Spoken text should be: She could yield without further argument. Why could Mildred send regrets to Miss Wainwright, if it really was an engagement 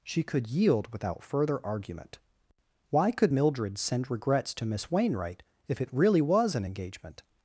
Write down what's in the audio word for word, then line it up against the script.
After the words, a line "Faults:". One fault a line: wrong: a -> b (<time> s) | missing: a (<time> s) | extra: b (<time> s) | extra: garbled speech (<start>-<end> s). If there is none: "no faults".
She could yield without further argument. Why could Mildred send regrets to Miss Wainwright, if it really was an engagement
Faults:
no faults